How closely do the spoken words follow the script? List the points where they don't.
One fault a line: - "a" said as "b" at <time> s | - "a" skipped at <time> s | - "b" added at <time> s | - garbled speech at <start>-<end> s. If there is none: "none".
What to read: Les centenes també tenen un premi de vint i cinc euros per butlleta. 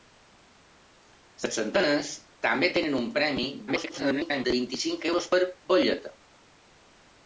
- garbled speech at 3.7-4.5 s